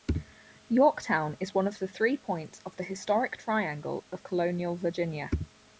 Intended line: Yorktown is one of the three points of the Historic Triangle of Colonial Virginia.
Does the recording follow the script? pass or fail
pass